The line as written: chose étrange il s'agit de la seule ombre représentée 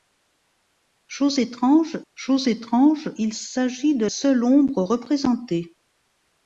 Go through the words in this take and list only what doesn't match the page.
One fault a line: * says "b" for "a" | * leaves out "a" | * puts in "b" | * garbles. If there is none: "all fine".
* puts in "chose étrange"
* leaves out "la"